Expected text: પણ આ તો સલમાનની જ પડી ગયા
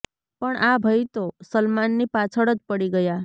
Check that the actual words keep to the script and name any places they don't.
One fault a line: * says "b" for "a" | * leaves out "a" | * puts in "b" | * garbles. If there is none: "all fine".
* puts in "ભઈ"
* puts in "પાછળ"